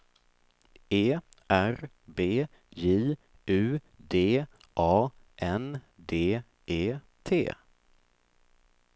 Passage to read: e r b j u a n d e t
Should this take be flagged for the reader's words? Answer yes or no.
yes